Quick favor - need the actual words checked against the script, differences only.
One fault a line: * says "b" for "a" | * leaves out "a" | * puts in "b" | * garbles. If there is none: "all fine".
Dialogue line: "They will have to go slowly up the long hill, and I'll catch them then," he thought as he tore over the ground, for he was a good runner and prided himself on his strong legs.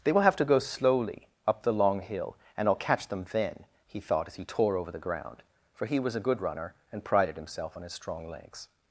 all fine